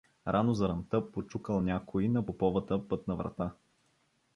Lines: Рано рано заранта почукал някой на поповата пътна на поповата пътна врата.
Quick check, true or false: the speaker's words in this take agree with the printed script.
false